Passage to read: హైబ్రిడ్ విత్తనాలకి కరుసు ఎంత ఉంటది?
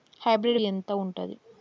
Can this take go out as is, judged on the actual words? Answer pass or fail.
fail